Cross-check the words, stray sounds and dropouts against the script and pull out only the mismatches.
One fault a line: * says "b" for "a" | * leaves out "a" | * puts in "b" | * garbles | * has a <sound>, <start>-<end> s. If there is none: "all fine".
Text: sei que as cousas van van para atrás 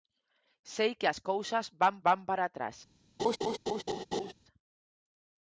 * has a laugh, 3.2-4.3 s